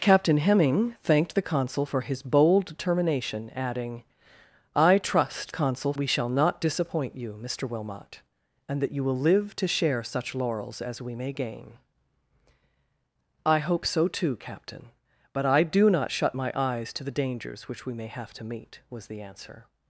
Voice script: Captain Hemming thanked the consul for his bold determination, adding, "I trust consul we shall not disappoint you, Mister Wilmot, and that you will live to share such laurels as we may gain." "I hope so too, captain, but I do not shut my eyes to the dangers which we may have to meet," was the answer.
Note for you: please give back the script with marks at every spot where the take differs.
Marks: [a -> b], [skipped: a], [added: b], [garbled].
Captain Hemming thanked the consul for his bold determination, adding, "I trust consul we shall not disappoint you, Mister Wilmot, and that you will live to share such laurels as we may gain." "I hope so too, captain, but I do not shut my eyes to the dangers which we may have to meet," was the answer.